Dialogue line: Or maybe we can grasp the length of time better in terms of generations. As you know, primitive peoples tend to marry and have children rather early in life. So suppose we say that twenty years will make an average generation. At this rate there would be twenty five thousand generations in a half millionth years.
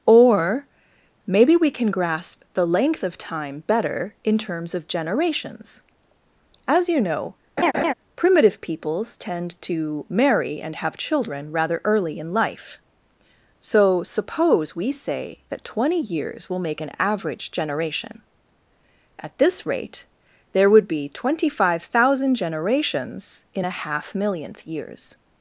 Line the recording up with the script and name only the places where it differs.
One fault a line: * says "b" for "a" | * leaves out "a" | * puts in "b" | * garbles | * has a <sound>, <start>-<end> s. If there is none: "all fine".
* has a laugh, 7.6-7.9 s